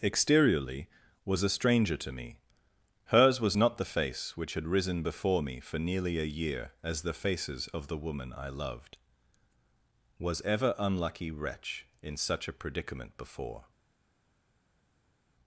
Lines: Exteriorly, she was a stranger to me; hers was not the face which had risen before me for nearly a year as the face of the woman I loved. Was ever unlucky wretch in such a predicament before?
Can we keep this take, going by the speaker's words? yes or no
no